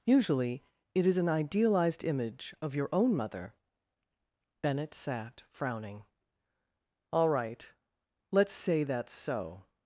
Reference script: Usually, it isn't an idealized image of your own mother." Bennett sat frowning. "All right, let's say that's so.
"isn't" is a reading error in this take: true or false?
true